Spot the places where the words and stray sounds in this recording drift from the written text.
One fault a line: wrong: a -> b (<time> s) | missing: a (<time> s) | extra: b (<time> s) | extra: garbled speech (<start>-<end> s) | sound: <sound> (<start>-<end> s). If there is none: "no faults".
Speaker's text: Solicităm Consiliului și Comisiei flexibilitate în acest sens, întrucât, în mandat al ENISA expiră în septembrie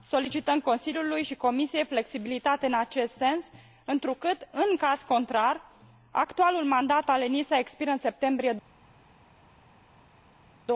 extra: caz contrar actualul (4.8 s)